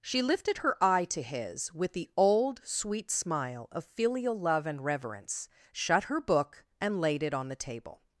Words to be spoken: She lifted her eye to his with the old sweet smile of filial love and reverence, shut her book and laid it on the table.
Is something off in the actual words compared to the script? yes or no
no